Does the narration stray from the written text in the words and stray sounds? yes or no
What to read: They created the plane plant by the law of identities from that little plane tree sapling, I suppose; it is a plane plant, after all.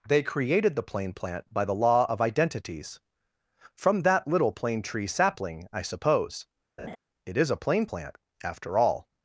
yes